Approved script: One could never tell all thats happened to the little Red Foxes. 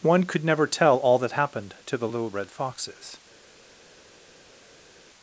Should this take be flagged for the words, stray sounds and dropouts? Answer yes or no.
yes